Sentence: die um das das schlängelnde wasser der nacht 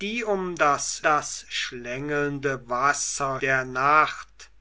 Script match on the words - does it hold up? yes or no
yes